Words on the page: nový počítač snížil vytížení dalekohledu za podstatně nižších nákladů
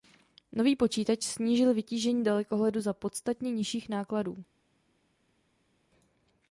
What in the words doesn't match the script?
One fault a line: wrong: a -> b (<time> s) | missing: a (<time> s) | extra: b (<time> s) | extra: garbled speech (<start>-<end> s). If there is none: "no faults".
no faults